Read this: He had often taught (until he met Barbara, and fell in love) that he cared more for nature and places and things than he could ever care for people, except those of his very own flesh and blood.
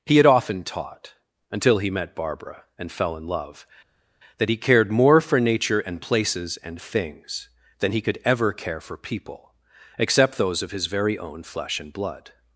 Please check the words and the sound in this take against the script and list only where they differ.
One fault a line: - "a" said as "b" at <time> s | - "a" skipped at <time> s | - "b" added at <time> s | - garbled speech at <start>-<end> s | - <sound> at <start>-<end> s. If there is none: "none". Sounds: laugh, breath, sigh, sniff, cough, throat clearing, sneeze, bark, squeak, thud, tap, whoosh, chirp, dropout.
none